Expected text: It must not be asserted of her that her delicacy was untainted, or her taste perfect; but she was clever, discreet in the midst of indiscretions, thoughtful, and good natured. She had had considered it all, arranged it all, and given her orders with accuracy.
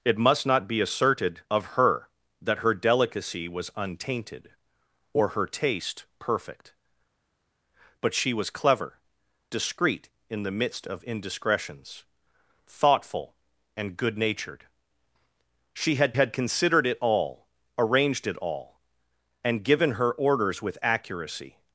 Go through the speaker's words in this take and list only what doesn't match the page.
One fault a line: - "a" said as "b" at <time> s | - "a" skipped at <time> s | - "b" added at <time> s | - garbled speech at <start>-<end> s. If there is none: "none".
none